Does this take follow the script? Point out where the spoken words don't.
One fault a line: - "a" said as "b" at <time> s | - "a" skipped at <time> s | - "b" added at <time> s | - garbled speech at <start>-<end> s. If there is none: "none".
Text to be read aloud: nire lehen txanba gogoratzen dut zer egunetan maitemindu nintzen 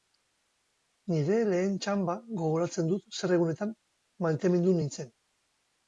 none